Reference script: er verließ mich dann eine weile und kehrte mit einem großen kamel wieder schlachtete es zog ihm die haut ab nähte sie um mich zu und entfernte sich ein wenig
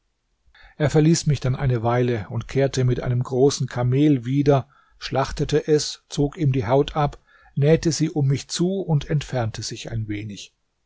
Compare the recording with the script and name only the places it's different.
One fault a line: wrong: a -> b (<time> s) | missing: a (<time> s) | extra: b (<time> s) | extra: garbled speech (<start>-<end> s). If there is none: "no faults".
no faults